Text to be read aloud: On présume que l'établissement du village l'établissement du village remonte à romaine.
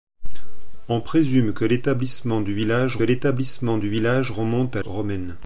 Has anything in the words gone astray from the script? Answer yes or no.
no